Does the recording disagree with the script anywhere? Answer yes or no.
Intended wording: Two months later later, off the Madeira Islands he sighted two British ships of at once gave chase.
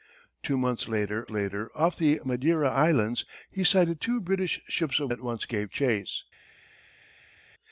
no